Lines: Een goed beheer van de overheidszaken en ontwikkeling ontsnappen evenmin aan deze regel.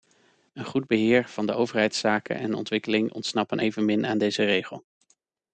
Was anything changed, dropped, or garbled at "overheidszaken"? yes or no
no